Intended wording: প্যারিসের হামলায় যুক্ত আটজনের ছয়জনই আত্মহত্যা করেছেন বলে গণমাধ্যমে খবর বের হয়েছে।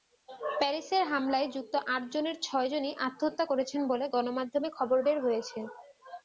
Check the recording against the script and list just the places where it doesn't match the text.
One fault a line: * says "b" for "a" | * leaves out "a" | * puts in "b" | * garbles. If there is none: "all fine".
all fine